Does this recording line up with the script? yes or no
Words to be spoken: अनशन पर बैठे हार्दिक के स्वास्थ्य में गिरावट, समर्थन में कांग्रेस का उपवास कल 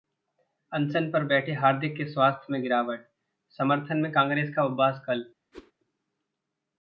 yes